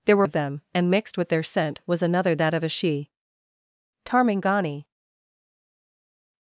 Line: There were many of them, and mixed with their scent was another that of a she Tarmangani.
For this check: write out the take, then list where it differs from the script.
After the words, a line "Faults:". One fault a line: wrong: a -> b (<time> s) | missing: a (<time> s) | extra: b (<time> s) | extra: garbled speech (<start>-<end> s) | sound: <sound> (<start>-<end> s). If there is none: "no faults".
There were of them, and mixed with their scent was another that of a she Tarmangani.
Faults:
missing: many (0.3 s)